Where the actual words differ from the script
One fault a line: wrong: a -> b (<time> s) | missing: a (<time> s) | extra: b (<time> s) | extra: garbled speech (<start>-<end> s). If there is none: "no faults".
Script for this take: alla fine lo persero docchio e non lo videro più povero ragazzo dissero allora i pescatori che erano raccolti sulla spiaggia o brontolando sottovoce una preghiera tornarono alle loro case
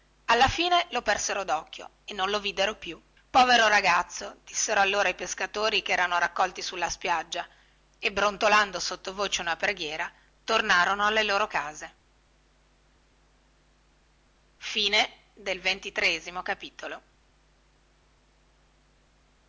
wrong: o -> e (8.0 s)